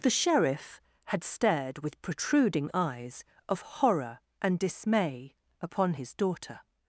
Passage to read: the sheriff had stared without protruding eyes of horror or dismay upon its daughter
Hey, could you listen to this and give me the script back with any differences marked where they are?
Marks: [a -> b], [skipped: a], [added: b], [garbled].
the sheriff had stared [without -> with] protruding eyes of horror [or -> and] dismay upon [its -> his] daughter